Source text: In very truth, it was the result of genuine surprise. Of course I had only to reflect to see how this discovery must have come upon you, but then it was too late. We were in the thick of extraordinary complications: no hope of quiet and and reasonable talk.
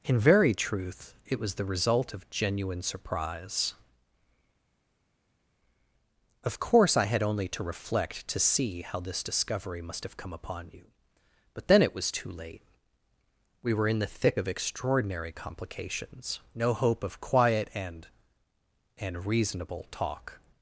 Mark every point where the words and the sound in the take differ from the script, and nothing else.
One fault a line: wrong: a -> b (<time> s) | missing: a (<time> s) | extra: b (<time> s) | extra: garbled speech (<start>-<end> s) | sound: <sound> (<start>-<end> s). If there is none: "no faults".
no faults